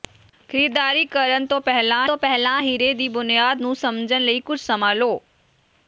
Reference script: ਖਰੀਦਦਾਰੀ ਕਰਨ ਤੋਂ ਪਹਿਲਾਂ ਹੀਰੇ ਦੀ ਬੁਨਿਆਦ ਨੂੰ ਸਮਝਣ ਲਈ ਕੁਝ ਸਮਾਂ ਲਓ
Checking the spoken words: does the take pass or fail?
fail